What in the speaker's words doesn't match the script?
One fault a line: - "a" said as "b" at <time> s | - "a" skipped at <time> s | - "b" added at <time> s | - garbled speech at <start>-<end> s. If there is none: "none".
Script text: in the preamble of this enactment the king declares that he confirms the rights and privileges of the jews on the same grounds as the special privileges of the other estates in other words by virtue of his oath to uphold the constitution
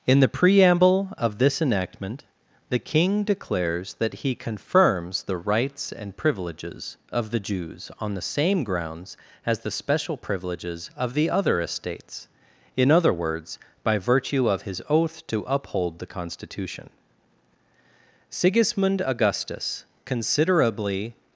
- "sigismund augustus considerably" added at 18.3 s